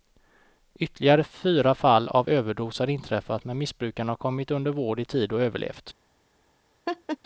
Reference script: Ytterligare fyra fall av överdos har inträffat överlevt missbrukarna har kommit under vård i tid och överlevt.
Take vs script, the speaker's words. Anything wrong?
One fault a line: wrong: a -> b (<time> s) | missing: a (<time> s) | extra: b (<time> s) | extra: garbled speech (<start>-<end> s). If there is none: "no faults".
wrong: överlevt -> men (3.4 s)